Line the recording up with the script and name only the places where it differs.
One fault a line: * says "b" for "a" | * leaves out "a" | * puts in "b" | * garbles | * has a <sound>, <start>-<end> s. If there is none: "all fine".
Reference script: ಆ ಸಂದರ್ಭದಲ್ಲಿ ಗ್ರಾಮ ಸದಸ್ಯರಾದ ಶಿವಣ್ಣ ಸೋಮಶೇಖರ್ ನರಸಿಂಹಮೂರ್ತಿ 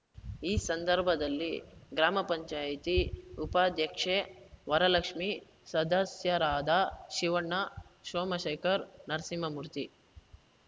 * says "ಈ" for "ಆ"
* puts in "ಪಂಚಾಯತಿ ಉಪಾಧ್ಯಕ್ಷೆ ವರಲಕ್ಷ್ಮಿ"